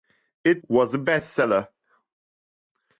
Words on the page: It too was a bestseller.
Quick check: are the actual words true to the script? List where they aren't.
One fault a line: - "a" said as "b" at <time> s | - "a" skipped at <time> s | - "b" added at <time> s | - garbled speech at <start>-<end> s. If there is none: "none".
- "too" skipped at 0.6 s